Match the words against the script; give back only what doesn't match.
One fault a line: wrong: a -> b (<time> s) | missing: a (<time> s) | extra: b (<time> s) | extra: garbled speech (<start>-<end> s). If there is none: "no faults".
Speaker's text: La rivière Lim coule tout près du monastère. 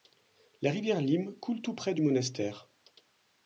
no faults